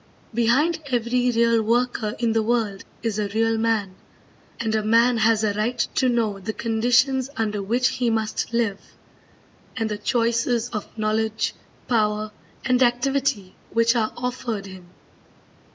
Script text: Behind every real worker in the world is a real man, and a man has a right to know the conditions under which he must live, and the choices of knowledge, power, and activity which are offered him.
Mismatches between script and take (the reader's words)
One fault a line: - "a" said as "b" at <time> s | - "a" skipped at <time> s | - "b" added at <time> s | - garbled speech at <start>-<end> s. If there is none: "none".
none